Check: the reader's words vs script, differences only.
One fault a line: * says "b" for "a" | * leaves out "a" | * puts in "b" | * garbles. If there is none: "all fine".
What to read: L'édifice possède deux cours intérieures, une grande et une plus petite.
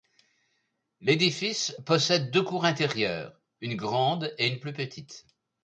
all fine